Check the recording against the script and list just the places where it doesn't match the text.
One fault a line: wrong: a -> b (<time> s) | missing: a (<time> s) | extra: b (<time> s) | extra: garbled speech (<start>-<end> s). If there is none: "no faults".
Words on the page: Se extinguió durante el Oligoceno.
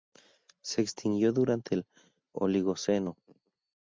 no faults